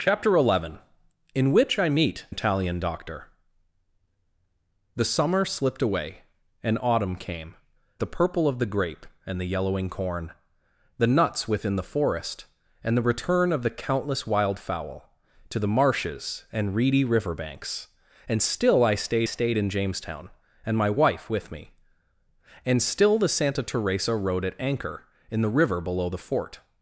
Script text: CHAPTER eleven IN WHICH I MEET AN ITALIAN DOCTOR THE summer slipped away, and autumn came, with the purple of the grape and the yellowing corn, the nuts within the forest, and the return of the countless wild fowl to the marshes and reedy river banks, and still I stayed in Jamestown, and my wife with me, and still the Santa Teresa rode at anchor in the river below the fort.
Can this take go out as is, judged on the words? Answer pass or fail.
fail